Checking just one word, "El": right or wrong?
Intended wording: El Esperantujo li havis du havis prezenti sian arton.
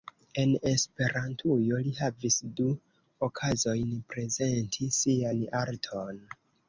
wrong